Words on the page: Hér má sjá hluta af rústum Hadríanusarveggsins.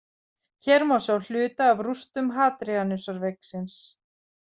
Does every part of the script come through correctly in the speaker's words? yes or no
yes